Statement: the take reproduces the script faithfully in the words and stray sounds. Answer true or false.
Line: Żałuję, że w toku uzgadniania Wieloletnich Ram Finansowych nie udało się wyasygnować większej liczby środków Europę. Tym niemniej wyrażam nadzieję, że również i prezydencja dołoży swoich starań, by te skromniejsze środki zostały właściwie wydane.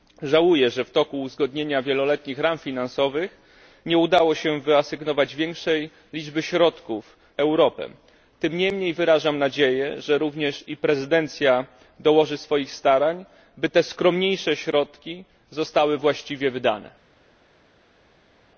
true